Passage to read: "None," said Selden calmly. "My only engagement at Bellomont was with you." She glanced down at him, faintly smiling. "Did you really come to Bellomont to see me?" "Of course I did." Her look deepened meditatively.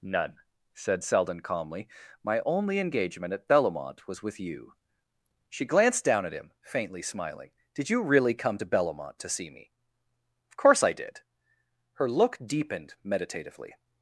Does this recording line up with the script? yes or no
yes